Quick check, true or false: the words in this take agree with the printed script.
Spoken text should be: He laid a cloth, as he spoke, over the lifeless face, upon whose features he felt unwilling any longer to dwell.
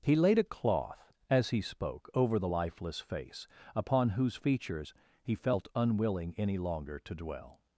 true